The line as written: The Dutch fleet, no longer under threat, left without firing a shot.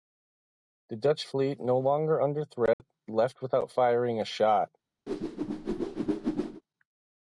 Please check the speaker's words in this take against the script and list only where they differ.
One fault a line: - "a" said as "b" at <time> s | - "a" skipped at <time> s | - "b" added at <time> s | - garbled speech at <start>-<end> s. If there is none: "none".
none